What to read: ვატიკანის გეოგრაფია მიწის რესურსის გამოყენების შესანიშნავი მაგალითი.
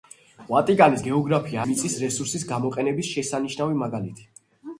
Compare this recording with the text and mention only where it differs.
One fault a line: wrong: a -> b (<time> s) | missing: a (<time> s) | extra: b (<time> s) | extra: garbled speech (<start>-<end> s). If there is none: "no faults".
no faults